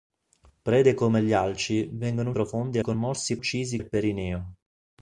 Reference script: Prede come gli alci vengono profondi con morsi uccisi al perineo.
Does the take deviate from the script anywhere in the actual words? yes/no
no